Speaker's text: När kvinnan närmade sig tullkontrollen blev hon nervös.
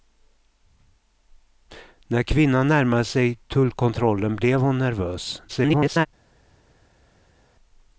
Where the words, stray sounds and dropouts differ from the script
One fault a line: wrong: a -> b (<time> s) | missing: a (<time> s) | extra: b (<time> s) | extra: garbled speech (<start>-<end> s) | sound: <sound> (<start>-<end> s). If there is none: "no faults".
extra: garbled speech (5.5-6.1 s)